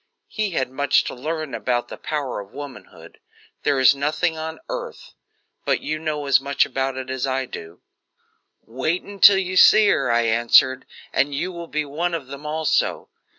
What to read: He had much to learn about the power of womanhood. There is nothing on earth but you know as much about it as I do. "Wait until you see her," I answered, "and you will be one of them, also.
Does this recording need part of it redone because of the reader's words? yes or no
no